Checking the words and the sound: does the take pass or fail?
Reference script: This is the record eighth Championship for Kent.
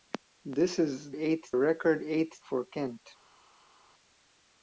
fail